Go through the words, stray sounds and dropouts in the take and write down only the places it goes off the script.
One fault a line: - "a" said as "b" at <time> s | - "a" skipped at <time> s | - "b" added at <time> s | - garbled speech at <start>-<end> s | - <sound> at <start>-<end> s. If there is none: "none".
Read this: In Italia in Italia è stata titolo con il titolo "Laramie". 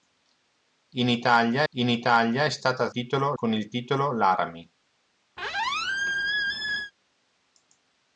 - squeak at 5.4-6.9 s